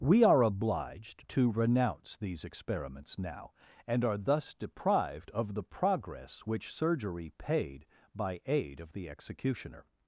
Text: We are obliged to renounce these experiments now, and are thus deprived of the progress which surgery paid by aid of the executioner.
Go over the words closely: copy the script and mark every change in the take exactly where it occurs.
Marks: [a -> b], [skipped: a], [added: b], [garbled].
We are obliged to renounce these experiments now, and are thus deprived of the progress which surgery paid by aid of the executioner.